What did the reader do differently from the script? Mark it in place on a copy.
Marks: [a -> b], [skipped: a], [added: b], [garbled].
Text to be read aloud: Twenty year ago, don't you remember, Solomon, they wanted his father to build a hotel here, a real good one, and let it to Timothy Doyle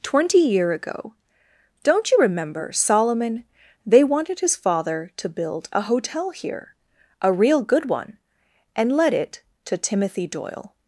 Twenty year ago, don't you remember, Solomon, they wanted his father to build a hotel here, a real good one, and let it to Timothy Doyle